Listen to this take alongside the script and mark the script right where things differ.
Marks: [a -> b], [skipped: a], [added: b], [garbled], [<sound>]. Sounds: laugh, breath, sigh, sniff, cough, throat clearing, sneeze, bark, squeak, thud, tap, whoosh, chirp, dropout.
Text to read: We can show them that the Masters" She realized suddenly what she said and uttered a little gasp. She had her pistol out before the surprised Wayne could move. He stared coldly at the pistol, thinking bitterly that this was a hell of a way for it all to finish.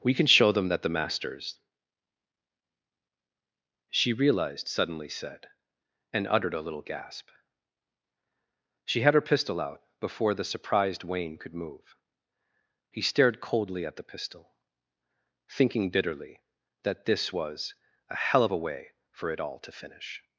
We can show them that the Masters" She realized suddenly [skipped: what she] said and uttered a little gasp. She had her pistol out before the surprised Wayne could move. He stared coldly at the pistol, thinking bitterly that this was a hell of a way for it all to finish.